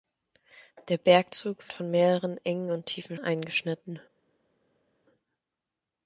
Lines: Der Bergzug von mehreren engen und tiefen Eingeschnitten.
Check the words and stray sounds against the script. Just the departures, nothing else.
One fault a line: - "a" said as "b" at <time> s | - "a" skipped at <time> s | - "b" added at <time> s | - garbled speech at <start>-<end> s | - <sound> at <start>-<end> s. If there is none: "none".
none